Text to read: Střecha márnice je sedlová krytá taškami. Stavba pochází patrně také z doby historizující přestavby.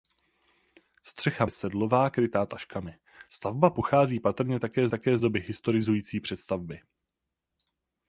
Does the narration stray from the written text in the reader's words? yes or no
yes